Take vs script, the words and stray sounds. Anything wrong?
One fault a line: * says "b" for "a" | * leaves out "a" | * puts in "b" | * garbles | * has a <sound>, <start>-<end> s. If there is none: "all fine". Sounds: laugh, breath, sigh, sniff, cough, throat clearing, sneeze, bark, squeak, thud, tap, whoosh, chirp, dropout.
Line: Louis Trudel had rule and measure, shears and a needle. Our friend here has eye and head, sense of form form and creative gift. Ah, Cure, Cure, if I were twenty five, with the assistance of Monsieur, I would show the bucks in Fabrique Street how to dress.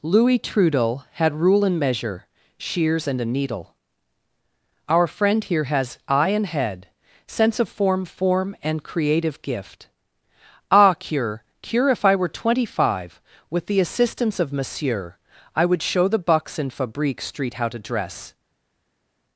all fine